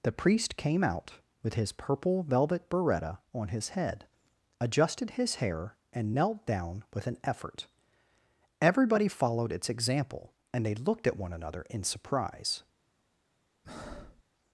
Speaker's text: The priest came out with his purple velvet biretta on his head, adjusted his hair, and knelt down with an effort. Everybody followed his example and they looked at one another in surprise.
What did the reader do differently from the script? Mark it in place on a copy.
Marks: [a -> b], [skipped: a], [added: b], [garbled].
The priest came out with his purple velvet biretta on his head, adjusted his hair, and knelt down with an effort. Everybody followed [his -> its] example and they looked at one another in surprise.